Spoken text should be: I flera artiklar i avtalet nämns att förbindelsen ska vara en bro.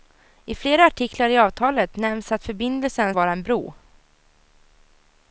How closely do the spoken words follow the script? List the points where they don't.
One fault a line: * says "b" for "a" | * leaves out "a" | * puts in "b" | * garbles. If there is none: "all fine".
* leaves out "ska"